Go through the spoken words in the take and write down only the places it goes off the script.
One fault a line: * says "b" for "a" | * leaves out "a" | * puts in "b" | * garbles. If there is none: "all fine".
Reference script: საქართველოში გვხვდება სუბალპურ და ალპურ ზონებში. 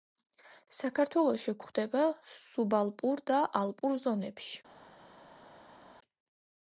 all fine